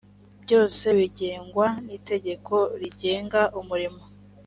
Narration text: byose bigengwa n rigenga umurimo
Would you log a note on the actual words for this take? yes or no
yes